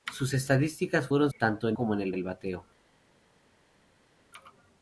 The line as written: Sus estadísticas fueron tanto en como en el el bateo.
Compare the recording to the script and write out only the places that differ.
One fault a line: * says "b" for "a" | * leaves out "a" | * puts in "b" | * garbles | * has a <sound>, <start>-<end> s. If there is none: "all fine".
all fine